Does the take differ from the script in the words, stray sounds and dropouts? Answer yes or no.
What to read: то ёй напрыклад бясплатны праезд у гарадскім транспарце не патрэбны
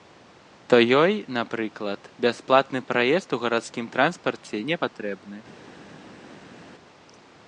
no